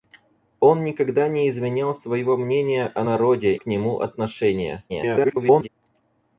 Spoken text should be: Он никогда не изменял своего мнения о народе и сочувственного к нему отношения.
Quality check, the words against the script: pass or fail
fail